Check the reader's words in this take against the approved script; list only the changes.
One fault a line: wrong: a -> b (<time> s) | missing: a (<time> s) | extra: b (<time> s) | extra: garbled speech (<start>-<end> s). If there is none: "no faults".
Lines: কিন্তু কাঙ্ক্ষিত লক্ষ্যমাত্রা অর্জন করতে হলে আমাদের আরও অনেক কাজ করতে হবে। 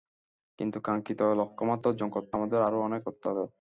missing: হলে (2.4 s)
missing: কাজ (3.0 s)